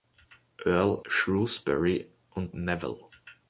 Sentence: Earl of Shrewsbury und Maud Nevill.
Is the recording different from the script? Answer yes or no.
yes